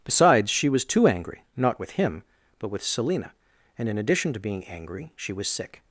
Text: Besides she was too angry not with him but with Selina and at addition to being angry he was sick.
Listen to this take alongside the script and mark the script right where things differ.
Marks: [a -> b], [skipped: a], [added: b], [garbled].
Besides she was too angry not with him but with Selina and [at -> in] addition to being angry [he -> she] was sick.